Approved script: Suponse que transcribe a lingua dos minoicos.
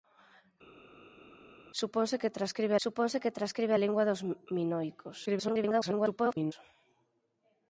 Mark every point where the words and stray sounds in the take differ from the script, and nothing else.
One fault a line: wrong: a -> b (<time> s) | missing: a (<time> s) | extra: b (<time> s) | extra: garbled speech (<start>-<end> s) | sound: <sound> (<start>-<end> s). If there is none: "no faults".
extra: suponse que transcribe (2.8 s)
extra: garbled speech (5.3-6.5 s)